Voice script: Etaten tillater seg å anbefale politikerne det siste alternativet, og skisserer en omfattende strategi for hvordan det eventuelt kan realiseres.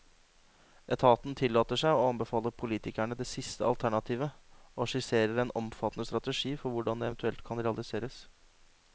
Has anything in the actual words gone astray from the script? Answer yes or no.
no